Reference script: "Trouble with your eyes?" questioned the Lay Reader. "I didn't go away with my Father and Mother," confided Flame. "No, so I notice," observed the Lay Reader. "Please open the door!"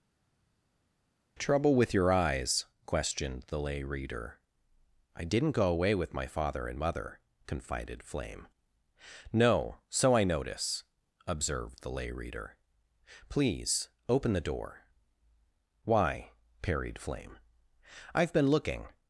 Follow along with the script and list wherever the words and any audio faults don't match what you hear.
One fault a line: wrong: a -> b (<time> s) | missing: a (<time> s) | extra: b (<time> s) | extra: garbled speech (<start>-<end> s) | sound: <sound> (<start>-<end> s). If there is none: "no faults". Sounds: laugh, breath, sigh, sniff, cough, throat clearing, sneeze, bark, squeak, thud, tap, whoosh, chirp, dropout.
extra: Why parried Flame I've been looking (15.8 s)